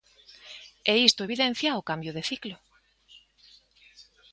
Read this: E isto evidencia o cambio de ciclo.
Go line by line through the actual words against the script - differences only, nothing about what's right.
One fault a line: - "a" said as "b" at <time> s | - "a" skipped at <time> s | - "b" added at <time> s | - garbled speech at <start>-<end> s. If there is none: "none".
none